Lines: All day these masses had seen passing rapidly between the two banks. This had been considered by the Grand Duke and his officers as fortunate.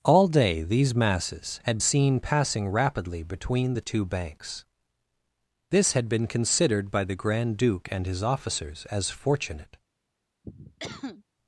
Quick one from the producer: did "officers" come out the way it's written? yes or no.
yes